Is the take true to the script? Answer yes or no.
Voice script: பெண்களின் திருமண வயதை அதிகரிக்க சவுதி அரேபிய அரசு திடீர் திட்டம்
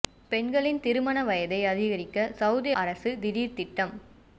no